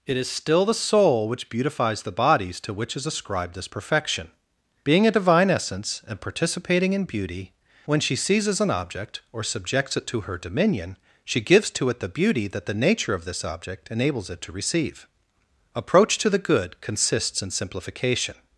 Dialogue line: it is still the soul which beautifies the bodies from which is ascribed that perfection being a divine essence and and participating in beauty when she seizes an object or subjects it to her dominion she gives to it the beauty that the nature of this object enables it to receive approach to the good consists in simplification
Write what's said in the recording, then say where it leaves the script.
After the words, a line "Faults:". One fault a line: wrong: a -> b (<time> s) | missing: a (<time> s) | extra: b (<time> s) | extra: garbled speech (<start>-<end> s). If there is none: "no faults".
it is still the soul which beautifies the bodies to which is ascribed this perfection being a divine essence and participating in beauty when she seizes an object or subjects it to her dominion she gives to it the beauty that the nature of this object enables it to receive approach to the good consists in simplification
Faults:
wrong: from -> to (2.6 s)
wrong: that -> this (3.5 s)
missing: and (6.2 s)